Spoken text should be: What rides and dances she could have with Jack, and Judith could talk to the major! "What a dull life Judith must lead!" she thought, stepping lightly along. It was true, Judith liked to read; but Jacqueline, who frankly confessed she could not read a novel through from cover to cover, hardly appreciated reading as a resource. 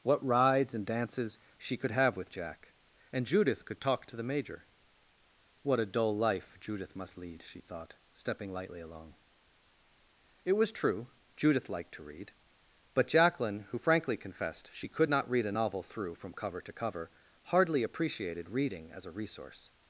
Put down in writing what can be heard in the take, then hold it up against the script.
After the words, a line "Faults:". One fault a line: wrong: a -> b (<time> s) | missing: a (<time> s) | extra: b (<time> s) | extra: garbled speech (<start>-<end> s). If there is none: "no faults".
What rides and dances she could have with Jack, and Judith could talk to the major! "What a dull life Judith must lead!" she thought, stepping lightly along. It was true, Judith liked to read; but Jacqueline, who frankly confessed she could not read a novel through from cover to cover, hardly appreciated reading as a resource.
Faults:
no faults